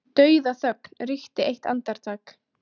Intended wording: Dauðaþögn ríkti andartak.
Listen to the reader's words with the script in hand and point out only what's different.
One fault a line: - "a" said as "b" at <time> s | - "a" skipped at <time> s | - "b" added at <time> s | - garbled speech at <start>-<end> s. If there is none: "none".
- "eitt" added at 1.5 s